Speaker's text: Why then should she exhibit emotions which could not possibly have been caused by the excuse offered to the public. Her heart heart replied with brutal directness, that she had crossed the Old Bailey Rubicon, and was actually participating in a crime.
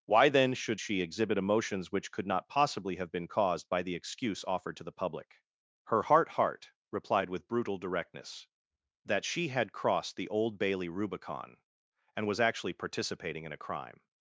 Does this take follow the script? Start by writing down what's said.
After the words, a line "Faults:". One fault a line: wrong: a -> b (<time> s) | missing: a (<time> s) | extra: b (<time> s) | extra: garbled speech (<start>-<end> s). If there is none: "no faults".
Why then should she exhibit emotions which could not possibly have been caused by the excuse offered to the public. Her heart heart replied with brutal directness, that she had crossed the Old Bailey Rubicon, and was actually participating in a crime.
Faults:
no faults